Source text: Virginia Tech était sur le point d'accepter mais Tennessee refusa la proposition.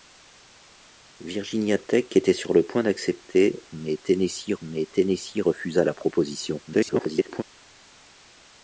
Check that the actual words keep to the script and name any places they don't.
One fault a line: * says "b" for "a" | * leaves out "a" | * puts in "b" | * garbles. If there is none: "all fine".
* puts in "mais Tennessee"
* garbles